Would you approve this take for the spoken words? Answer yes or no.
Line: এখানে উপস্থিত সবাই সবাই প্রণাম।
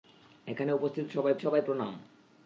yes